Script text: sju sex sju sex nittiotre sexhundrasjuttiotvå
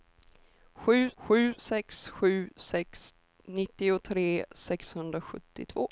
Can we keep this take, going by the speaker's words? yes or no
no